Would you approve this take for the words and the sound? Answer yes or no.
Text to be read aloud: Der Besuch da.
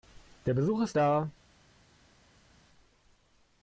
no